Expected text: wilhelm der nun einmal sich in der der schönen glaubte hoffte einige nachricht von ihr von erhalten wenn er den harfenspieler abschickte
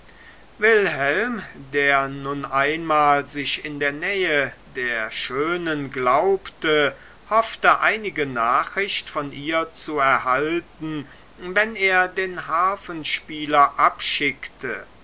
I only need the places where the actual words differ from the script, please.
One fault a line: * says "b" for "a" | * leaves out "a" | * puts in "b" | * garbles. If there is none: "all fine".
* puts in "nähe"
* says "zu" for "von"